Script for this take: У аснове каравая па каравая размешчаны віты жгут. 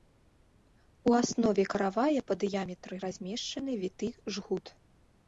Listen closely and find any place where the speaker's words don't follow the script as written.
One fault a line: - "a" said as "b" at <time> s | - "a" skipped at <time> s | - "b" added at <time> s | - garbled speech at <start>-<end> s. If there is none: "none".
- "каравая" said as "дыяметры" at 2.4 s